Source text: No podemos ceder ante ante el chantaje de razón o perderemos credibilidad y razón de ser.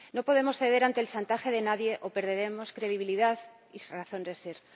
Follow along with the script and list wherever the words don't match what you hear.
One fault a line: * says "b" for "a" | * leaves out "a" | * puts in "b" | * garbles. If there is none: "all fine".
* leaves out "ante"
* says "nadie" for "razón"